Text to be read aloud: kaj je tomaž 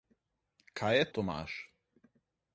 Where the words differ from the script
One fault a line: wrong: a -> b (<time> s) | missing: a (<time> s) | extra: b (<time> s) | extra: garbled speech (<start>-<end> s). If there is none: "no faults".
no faults